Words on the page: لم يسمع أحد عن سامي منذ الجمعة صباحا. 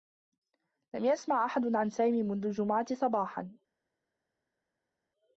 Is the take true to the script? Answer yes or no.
yes